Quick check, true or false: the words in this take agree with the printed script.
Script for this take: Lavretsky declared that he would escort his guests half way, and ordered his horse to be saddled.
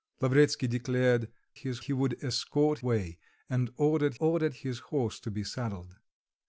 false